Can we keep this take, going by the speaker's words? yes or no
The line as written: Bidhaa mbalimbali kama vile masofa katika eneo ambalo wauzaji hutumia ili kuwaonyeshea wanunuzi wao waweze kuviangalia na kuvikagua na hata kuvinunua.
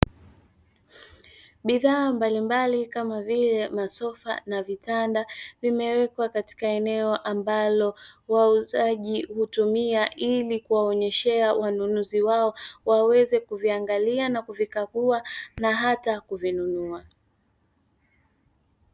no